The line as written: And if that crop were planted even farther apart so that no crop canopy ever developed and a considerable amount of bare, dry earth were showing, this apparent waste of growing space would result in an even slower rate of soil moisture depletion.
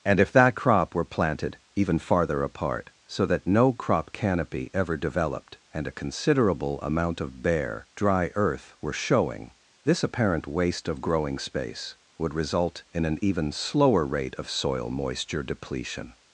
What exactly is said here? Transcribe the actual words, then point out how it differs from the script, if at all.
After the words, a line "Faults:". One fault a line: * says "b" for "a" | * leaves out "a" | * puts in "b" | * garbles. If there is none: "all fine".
And if that crop were planted even farther apart so that no crop canopy ever developed and a considerable amount of bare, dry earth were showing, this apparent waste of growing space would result in an even slower rate of soil moisture depletion.
Faults:
all fine